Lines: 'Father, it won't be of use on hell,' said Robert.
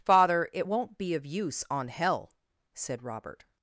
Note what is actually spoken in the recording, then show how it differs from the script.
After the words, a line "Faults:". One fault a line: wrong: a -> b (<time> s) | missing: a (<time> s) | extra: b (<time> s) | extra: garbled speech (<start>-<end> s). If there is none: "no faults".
'Father, it won't be of use on hell,' said Robert.
Faults:
no faults